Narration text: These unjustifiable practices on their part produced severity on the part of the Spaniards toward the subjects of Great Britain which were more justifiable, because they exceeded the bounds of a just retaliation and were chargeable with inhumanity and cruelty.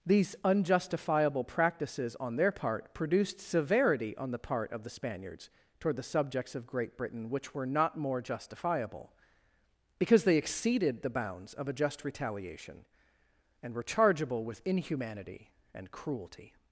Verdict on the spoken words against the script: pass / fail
fail